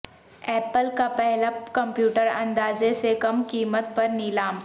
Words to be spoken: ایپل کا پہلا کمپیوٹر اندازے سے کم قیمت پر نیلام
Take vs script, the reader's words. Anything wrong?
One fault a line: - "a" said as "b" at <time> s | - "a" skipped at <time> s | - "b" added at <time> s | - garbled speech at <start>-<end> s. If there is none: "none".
none